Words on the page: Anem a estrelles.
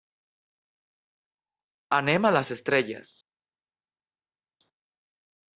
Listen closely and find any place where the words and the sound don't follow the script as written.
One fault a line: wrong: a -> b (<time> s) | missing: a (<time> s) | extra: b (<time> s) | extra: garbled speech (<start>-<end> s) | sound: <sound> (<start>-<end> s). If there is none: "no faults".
extra: les (2.4 s)